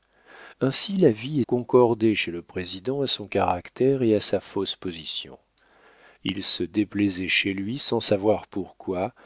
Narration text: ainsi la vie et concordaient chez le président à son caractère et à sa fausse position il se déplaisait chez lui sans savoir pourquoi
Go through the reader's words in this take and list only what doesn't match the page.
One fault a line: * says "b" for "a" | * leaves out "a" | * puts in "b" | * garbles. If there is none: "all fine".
all fine